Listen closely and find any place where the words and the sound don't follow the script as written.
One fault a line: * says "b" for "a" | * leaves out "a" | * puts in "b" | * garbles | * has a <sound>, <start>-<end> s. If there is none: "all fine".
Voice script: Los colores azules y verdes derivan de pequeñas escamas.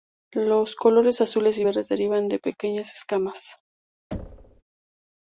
* has a thud, 4.1-4.6 s